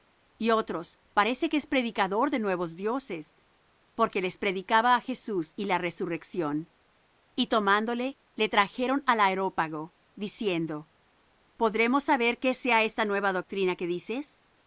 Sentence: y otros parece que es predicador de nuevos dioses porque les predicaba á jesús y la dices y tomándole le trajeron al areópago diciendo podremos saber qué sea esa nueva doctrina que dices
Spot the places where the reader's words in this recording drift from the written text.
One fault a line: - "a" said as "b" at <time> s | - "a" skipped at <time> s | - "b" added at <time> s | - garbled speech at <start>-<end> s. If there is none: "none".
- "dices" said as "resurrección" at 5.8 s
- "esa" said as "esta" at 12.8 s